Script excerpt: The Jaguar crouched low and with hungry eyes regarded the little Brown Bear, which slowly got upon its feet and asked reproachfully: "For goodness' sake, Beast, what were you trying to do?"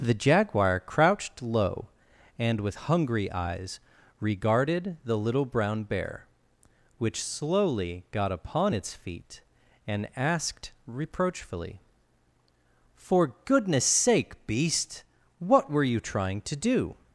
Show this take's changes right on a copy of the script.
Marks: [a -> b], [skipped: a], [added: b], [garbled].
The Jaguar crouched low and with hungry eyes regarded the little Brown Bear, which slowly got upon its feet and asked reproachfully: "For goodness' sake, Beast, what were you trying to do?"